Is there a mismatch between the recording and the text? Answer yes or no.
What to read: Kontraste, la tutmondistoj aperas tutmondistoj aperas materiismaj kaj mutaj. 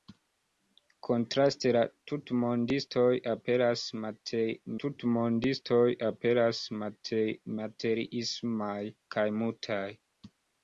no